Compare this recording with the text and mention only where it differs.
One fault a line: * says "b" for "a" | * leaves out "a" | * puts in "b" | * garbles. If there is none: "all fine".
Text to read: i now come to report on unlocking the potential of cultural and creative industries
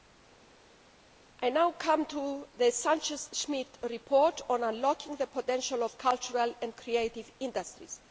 * puts in "the sanchez schmid"